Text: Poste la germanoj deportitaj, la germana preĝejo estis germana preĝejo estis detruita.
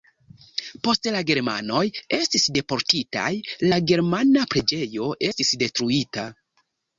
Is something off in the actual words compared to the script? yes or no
yes